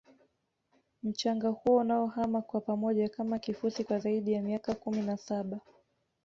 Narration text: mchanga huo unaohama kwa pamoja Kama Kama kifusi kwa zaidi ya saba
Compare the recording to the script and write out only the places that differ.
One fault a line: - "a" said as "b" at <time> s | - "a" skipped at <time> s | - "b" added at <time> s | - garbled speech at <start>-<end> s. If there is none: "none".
- "Kama" skipped at 3.4 s
- "miaka kumi na" added at 4.4 s